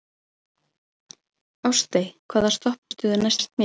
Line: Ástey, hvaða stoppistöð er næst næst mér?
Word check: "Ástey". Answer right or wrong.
right